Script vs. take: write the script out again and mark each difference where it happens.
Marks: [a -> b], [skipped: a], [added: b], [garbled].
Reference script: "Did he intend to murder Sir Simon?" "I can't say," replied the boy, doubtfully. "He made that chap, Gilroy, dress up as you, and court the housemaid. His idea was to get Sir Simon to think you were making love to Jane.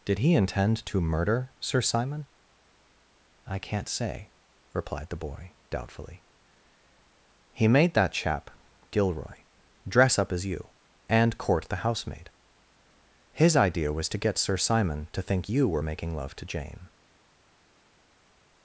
"Did he intend to murder Sir Simon?" "I can't say," replied the boy, doubtfully. "He made that chap, Gilroy, dress up as you, and court the housemaid. His idea was to get Sir Simon to think you were making love to Jane.